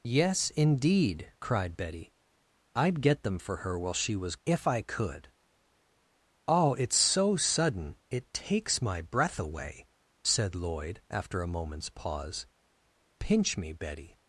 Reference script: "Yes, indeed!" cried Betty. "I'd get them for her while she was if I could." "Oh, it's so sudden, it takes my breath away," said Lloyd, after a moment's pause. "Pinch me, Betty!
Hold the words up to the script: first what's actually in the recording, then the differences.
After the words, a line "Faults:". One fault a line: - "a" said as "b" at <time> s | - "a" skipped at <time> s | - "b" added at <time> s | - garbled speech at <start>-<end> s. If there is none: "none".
"Yes, indeed!" cried Betty. "I'd get them for her while she was if I could." "Oh, it's so sudden, it takes my breath away," said Lloyd, after a moment's pause. "Pinch me, Betty!
Faults:
none